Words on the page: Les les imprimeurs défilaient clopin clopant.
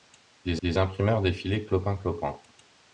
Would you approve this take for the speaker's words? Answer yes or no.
yes